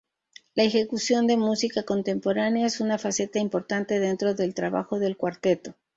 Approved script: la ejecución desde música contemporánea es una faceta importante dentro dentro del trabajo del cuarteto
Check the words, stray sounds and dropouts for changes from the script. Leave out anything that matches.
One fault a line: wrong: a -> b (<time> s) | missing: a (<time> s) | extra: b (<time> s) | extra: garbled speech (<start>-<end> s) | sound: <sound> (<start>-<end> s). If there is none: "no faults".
wrong: desde -> de (1.3 s)
missing: dentro (4.3 s)